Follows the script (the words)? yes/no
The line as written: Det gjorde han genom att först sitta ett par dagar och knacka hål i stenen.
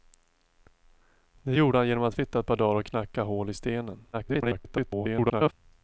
no